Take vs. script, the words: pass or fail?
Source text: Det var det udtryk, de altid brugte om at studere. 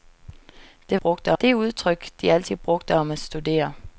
fail